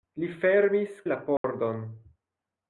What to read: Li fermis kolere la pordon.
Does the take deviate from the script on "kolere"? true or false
true